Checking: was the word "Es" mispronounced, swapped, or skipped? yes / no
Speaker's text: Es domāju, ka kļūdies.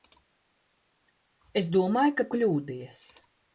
no